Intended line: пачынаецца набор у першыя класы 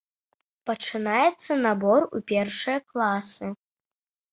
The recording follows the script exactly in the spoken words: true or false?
true